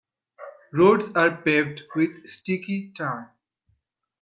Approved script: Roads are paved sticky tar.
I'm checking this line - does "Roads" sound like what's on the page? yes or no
yes